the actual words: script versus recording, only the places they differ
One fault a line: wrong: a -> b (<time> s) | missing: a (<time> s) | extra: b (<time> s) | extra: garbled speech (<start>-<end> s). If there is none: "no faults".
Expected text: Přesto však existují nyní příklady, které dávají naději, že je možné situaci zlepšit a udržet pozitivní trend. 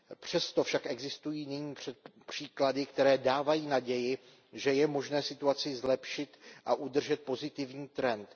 no faults